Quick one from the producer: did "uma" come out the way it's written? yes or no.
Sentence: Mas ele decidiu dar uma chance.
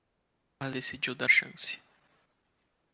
no